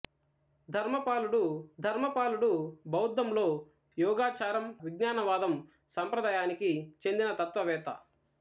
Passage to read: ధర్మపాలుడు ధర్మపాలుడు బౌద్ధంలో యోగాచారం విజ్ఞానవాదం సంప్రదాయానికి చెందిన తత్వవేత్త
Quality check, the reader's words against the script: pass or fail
pass